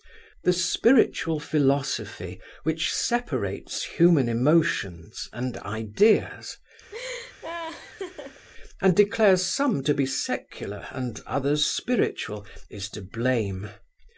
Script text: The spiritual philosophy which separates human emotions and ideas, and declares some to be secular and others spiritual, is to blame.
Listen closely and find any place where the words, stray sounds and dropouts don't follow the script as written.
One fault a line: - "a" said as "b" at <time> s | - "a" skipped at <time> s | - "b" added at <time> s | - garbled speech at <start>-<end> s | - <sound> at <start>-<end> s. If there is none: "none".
- laugh at 6.9-8.4 s